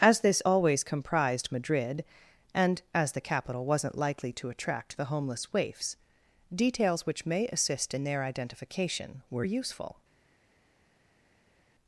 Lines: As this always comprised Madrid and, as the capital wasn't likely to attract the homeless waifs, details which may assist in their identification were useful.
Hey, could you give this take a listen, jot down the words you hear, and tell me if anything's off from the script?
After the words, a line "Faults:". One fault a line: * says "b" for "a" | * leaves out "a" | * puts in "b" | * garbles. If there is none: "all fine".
As this always comprised Madrid and, as the capital wasn't likely to attract the homeless waifs, details which may assist in their identification were useful.
Faults:
all fine